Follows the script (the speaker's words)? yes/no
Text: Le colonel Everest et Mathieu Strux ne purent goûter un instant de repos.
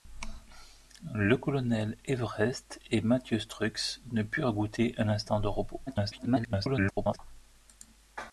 no